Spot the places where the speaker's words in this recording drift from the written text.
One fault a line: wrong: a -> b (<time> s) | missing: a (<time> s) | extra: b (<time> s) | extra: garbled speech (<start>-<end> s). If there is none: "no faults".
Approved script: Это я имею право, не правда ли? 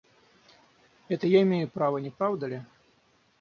no faults